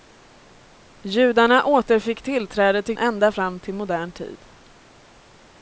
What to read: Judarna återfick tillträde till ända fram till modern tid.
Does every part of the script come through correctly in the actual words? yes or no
yes